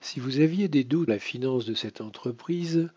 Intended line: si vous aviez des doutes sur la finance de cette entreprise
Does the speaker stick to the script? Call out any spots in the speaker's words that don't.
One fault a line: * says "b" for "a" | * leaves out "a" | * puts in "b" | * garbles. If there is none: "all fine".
* leaves out "sur"